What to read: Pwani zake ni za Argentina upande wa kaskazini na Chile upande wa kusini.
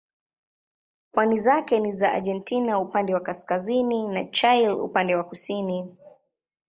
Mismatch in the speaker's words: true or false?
false